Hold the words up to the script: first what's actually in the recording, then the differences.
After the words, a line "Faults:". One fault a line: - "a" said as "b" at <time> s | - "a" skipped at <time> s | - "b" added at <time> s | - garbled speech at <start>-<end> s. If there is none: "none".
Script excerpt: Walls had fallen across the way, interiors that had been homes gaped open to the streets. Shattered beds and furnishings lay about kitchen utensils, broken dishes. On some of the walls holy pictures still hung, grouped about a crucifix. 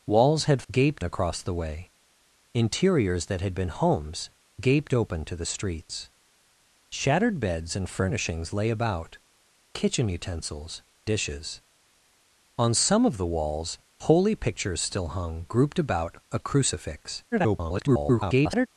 Walls had gaped across the way, interiors that had been homes gaped open to the streets. Shattered beds and furnishings lay about kitchen utensils, dishes. On some of the walls holy pictures still hung, grouped about a crucifix. [garbled]
Faults:
- "fallen" said as "gaped" at 0.7 s
- "broken" skipped at 10.8 s
- garbled speech at 17.3-18.7 s